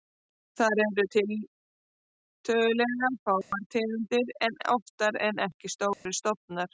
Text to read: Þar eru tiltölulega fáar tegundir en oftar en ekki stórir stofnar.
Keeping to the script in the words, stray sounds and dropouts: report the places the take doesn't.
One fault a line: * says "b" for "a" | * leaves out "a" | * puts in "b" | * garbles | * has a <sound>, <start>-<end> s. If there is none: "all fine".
* has a dropout, 3.4-3.5 s
* has a dropout, 5.9-6.1 s